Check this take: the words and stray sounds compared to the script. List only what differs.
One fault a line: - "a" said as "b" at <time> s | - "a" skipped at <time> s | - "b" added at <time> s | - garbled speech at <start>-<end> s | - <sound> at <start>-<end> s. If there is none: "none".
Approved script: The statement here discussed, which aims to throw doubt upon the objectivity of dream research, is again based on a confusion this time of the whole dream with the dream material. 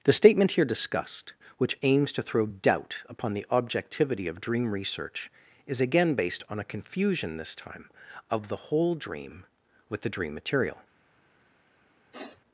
- sniff at 12.1-12.4 s